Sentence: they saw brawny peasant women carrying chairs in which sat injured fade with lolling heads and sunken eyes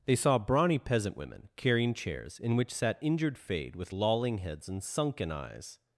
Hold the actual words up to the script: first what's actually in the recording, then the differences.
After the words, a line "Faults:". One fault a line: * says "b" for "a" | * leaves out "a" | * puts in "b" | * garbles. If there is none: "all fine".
they saw brawny peasant women carrying chairs in which sat injured fade with lolling heads and sunken eyes
Faults:
all fine